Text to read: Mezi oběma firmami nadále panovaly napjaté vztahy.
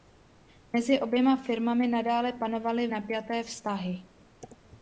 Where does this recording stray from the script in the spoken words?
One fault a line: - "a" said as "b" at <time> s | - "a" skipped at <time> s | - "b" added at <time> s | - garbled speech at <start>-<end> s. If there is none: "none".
none